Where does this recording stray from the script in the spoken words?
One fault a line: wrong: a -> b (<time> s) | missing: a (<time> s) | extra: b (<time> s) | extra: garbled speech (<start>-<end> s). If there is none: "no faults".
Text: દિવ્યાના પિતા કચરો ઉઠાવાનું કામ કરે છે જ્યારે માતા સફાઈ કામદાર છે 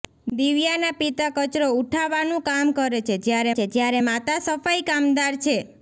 extra: છે જ્યારે (3.5 s)